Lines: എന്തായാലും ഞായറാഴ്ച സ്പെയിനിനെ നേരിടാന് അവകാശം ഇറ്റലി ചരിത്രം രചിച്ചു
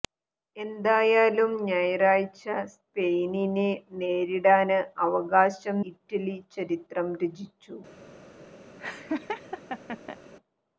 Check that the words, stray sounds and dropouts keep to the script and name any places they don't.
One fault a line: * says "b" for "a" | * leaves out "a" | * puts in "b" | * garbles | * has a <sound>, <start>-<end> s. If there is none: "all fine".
* has a laugh, 8.8-10.2 s